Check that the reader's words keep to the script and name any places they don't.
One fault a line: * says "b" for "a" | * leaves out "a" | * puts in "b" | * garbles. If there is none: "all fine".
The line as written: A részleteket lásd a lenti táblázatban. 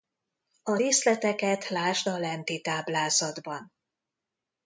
all fine